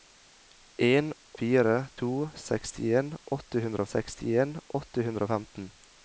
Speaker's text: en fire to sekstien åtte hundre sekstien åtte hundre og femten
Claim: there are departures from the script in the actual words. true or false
false